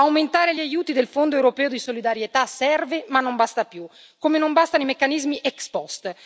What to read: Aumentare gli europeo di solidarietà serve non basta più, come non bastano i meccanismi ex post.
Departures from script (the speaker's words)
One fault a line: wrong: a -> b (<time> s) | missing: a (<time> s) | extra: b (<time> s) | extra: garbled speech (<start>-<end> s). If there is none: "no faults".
extra: aiuti del Fondo (0.6 s)
extra: ma (3.1 s)